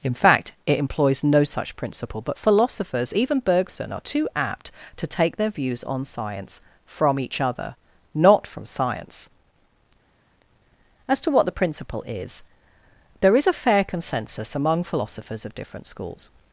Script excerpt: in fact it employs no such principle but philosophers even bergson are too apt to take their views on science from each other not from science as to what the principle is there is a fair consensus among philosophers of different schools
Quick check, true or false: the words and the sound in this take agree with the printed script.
true